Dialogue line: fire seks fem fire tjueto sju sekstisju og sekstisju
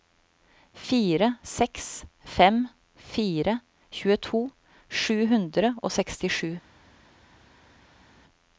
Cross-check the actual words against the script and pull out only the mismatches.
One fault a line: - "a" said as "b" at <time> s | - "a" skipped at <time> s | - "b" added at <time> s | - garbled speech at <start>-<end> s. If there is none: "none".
- "sekstisju" said as "hundre" at 5.3 s